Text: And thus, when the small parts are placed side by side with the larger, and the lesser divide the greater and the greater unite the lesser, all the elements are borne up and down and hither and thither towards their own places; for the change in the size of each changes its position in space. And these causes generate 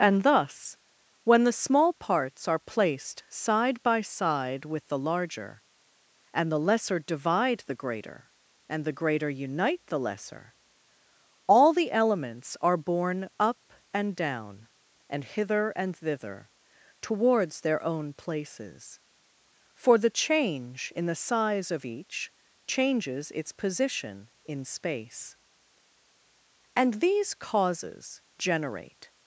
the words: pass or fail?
pass